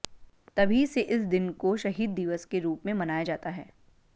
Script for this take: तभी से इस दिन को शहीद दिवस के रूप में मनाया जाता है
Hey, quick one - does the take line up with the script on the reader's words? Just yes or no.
yes